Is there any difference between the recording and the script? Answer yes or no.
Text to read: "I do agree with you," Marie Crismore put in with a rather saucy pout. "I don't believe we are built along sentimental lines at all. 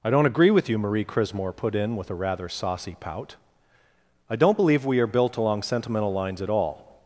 yes